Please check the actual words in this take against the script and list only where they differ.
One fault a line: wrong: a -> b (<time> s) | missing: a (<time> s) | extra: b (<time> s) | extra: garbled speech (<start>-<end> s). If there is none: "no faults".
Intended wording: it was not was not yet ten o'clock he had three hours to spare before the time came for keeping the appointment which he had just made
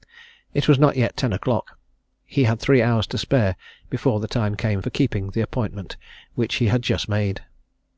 missing: was not (1.0 s)